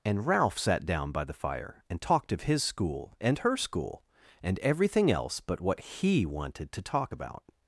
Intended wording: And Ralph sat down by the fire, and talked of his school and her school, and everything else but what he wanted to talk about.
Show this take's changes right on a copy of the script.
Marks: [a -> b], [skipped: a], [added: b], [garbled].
And Ralph sat down by the fire, and talked of his school and her school, and everything else but what he wanted to talk about.